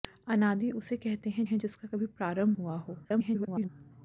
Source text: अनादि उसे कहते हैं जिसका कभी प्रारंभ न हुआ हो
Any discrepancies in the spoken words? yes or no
yes